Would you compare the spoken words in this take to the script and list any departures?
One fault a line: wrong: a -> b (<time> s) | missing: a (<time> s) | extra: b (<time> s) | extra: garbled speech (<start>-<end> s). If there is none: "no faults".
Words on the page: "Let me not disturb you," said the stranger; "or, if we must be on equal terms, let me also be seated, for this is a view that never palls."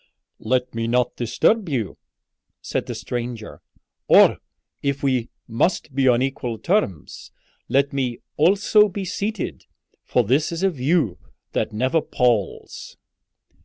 no faults